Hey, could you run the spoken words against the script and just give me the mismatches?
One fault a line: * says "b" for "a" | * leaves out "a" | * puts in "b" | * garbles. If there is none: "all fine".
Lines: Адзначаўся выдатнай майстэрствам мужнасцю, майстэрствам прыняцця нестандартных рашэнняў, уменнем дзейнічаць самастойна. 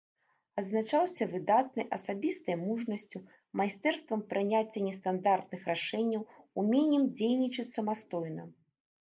* says "асабістай" for "майстэрствам"